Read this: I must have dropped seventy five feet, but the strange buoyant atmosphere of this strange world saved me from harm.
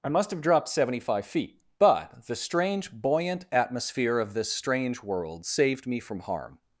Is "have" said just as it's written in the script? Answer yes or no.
yes